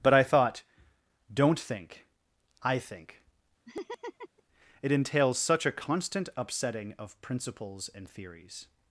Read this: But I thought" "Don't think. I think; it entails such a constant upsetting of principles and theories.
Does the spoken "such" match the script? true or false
true